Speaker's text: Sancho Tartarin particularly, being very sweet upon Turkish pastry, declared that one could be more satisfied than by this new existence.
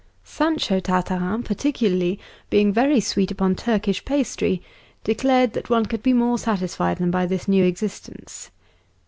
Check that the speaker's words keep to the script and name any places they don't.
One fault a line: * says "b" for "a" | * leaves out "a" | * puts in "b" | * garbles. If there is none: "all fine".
all fine